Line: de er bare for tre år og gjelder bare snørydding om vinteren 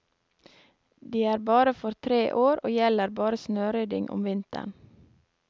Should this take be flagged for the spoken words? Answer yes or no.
no